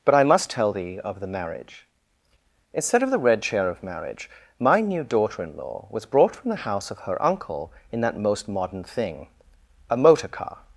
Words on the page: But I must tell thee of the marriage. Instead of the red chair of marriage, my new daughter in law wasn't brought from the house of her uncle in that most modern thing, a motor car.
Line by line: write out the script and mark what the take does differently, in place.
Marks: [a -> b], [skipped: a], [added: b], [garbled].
But I must tell thee of the marriage. Instead of the red chair of marriage, my new daughter in law [wasn't -> was] brought from the house of her uncle in that most modern thing, a motor car.